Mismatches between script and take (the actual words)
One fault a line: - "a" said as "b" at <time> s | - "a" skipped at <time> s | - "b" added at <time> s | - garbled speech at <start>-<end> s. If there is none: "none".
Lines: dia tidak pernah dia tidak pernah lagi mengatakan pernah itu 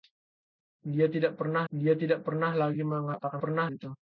none